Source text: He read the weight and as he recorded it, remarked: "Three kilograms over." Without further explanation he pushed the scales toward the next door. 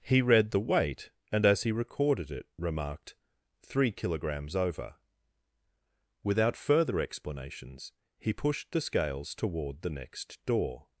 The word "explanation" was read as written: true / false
false